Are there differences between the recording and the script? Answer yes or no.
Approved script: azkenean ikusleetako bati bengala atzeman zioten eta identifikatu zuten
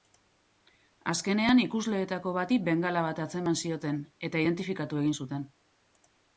yes